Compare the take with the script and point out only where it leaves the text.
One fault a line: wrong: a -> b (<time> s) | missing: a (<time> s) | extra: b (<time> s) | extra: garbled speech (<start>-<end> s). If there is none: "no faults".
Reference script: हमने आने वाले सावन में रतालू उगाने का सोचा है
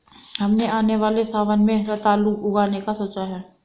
no faults